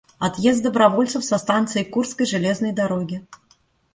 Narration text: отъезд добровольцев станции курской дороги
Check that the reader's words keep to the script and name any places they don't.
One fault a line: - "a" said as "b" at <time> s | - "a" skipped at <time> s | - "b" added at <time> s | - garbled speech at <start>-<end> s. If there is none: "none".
- "со" added at 1.2 s
- "железной" added at 2.3 s